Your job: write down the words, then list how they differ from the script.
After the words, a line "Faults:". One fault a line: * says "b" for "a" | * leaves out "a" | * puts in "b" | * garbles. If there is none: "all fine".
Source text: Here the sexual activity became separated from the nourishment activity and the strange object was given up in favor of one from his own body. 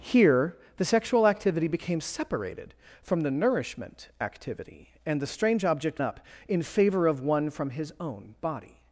Here the sexual activity became separated from the nourishment activity and the strange object up in favor of one from his own body.
Faults:
* leaves out "was given"